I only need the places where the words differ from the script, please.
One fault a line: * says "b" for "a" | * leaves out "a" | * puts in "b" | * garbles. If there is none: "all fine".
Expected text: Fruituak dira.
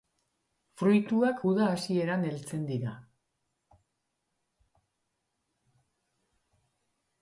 * puts in "uda hasieran heltzen"